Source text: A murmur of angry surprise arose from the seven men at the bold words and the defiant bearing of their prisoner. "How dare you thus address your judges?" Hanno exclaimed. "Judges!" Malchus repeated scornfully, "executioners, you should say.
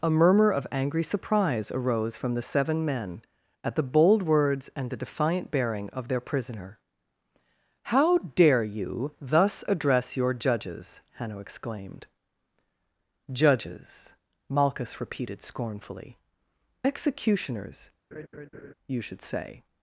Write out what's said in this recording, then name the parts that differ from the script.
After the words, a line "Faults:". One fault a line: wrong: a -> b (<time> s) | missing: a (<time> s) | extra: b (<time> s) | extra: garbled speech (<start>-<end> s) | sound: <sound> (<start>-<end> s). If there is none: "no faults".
A murmur of angry surprise arose from the seven men at the bold words and the defiant bearing of their prisoner. "How dare you thus address your judges?" Hanno exclaimed. "Judges!" Malchus repeated scornfully, "executioners, you should say.
Faults:
sound: laugh (18.1-18.7 s)